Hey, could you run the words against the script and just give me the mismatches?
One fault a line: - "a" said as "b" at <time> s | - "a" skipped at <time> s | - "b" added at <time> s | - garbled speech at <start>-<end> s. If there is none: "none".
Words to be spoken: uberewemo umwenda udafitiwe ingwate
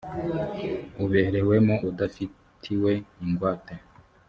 - "umwenda" skipped at 1.8 s